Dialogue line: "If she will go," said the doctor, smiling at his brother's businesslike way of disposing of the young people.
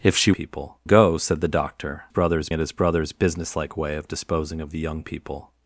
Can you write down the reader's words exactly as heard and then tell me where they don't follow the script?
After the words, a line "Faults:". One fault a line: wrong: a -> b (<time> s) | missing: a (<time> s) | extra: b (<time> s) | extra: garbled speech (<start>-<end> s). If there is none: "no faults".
"If she people go," said the doctor, brother's at his brother's businesslike way of disposing of the young people.
Faults:
wrong: will -> people (0.3 s)
wrong: smiling -> brother's (2.1 s)